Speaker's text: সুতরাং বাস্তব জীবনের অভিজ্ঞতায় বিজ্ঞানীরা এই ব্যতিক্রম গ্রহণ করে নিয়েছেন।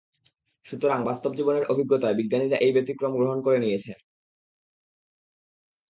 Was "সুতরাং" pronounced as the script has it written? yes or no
yes